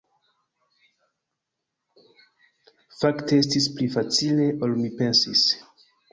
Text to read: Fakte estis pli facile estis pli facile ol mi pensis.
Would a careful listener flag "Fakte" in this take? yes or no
no